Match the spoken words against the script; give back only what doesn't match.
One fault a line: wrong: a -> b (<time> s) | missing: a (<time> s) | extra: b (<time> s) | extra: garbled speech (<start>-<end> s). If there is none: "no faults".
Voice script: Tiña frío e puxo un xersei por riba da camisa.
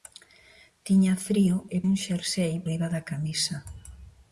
missing: puxo (1.8 s)
missing: por (2.5 s)